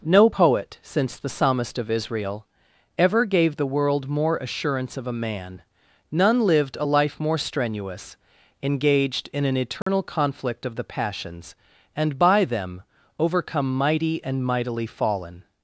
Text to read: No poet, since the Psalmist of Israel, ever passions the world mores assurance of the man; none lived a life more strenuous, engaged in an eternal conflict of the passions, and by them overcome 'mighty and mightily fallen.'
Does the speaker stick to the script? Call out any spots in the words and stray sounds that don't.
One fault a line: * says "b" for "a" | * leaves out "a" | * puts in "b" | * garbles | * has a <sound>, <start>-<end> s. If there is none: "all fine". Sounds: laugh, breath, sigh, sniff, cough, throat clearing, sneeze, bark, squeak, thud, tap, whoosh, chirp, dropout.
* says "gave" for "passions"
* says "more" for "mores"
* says "a" for "the"
* has a dropout, 9.8-9.9 s